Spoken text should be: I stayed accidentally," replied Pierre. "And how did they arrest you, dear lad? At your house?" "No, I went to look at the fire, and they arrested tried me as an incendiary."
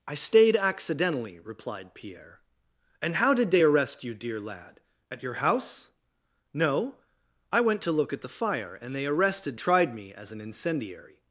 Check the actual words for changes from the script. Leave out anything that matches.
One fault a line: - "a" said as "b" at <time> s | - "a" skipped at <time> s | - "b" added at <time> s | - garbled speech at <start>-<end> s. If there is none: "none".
none